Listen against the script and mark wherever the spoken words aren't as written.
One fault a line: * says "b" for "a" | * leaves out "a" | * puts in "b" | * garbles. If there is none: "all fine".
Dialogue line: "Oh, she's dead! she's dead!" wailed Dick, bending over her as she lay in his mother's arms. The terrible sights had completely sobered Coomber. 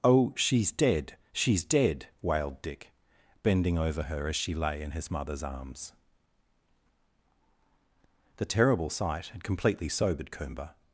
* says "sight" for "sights"